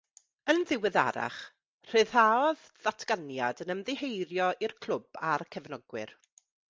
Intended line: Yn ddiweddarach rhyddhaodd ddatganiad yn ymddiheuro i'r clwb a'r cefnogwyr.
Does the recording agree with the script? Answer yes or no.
yes